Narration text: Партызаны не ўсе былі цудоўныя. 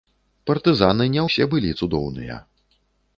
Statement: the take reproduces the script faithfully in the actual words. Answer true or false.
true